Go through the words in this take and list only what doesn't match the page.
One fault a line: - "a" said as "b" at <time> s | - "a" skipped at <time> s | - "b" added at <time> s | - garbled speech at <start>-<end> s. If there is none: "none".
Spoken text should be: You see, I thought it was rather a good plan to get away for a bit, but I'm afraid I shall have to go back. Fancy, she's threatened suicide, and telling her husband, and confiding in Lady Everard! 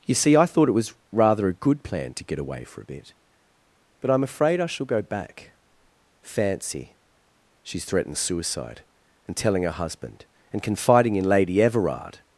- "have to" skipped at 4.9 s